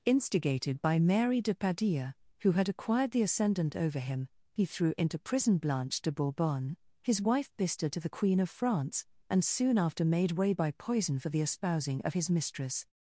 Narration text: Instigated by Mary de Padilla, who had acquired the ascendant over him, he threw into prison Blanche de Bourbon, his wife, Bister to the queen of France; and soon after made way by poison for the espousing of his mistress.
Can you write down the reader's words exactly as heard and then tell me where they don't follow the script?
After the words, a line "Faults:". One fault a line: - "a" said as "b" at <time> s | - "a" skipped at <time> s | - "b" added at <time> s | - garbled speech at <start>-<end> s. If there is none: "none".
Instigated by Mary de Padilla, who had acquired the ascendant over him, he threw into prison Blanche de Bourbon, his wife, Bister to the queen of France; and soon after made way by poison for the espousing of his mistress.
Faults:
none